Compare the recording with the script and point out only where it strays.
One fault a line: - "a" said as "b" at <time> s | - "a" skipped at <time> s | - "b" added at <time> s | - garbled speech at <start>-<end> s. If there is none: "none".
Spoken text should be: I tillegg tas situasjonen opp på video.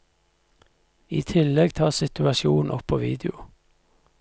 none